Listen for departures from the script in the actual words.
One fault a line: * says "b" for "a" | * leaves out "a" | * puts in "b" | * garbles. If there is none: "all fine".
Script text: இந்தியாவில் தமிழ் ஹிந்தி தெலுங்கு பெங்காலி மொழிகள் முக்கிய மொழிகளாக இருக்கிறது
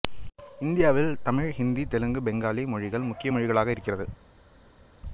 all fine